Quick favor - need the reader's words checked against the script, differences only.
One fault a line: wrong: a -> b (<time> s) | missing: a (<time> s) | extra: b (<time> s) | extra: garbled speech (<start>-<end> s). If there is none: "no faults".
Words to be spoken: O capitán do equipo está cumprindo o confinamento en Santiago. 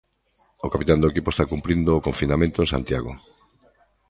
no faults